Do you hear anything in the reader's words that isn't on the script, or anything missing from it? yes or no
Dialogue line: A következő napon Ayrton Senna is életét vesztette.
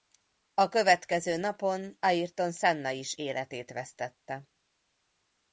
no